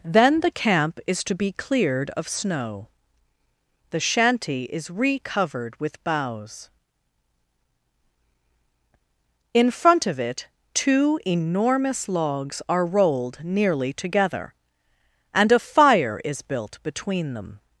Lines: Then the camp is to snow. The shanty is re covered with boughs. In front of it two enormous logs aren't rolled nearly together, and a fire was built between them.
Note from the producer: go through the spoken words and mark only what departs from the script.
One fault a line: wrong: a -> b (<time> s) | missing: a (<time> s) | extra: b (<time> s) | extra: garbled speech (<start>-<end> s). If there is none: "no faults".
extra: be cleared of (1.4 s)
wrong: aren't -> are (12.7 s)
wrong: was -> is (16.2 s)